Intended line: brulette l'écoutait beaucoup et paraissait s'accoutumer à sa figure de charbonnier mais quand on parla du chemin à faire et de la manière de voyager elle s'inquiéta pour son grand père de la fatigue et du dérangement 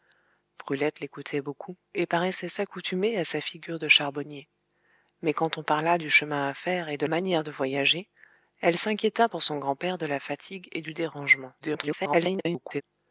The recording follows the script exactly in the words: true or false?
false